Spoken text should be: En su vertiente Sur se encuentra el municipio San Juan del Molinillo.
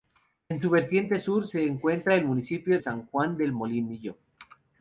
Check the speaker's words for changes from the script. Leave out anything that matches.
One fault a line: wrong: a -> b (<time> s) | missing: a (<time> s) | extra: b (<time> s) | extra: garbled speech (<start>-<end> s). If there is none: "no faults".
no faults